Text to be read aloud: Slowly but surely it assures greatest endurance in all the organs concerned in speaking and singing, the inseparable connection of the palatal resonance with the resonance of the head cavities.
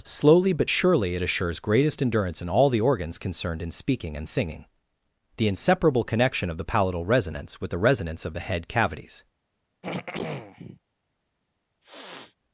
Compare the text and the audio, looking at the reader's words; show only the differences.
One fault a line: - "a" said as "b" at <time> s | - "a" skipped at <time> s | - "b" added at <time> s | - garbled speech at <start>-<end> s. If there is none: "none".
none